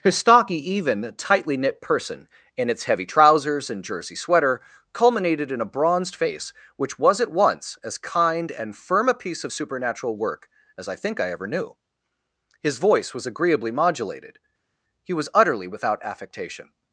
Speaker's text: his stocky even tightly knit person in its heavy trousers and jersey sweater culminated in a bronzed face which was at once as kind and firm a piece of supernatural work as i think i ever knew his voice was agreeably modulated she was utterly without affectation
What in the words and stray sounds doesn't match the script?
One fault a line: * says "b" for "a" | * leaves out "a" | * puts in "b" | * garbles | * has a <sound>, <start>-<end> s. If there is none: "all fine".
* says "he" for "she"